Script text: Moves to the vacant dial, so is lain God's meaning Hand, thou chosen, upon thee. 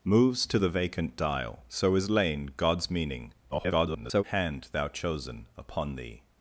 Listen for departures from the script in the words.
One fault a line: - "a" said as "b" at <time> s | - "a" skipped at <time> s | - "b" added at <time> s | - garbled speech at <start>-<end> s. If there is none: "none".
- garbled speech at 3.5-4.2 s